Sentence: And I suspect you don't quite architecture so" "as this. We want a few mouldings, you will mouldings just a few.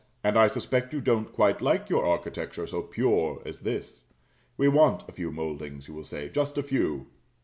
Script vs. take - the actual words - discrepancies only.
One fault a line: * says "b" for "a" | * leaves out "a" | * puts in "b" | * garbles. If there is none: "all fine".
* puts in "like your"
* puts in "pure"
* says "say" for "mouldings"